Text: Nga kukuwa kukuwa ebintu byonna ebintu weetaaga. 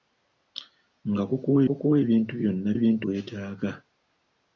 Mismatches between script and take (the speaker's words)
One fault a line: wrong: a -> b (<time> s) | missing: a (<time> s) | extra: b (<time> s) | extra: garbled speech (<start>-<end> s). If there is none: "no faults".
no faults